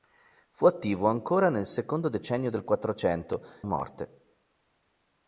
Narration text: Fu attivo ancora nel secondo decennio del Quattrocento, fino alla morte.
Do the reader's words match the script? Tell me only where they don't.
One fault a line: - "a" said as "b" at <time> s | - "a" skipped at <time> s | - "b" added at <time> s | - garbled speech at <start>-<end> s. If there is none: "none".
- "fino alla" skipped at 3.5 s